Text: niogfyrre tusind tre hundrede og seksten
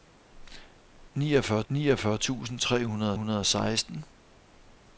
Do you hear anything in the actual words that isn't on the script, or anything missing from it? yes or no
yes